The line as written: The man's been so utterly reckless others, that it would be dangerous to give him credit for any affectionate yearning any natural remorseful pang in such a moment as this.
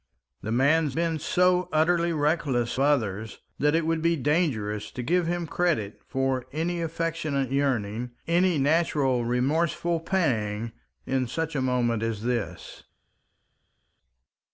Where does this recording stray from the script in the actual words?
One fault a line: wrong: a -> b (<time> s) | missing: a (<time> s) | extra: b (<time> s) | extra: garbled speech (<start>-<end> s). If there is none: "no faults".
no faults